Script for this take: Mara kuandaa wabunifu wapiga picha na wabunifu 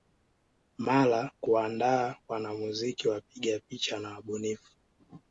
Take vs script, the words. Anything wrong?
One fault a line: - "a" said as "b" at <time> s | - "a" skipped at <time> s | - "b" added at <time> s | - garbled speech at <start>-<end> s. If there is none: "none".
- "wabunifu" said as "wanamuziki" at 2.3 s